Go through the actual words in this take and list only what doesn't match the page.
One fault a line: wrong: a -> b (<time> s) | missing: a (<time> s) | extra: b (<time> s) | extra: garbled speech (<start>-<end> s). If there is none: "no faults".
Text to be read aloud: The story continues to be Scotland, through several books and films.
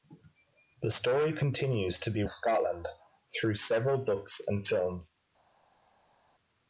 no faults